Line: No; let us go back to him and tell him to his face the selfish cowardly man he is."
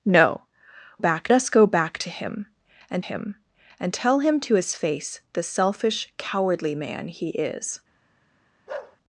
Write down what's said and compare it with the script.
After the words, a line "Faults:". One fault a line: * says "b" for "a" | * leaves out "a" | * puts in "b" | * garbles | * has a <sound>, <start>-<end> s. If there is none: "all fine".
No; back us go back to him and him and tell him to his face the selfish cowardly man he is."
Faults:
* says "back" for "let"
* puts in "him and"
* has a bark, 8.7-9.0 s